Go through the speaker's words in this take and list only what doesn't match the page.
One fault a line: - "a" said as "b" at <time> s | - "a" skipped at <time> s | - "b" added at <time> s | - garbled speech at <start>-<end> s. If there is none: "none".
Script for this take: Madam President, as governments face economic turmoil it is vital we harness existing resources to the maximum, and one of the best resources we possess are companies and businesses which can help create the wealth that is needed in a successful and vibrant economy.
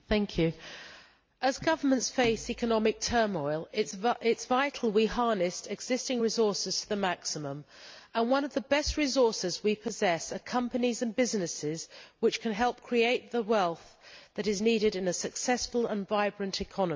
none